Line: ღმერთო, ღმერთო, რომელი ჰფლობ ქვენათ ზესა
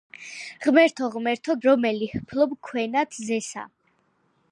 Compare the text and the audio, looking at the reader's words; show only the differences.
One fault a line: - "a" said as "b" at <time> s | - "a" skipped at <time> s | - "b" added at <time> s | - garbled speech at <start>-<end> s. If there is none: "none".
none